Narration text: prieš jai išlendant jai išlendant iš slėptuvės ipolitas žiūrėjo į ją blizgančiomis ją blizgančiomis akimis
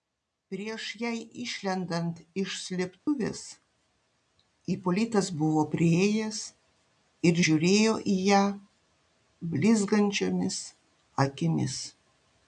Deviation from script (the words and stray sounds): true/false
true